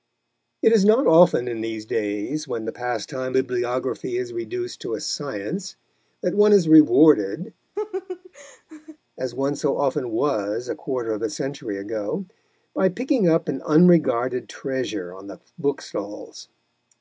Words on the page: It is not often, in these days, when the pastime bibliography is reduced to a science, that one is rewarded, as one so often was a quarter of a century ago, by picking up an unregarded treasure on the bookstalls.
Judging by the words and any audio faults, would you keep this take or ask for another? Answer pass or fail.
fail